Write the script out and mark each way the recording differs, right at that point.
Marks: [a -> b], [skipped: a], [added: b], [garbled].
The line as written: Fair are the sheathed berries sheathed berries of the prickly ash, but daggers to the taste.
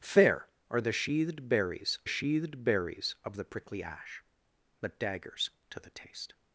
Fair are the sheathed berries sheathed berries of the prickly ash, but daggers to the taste.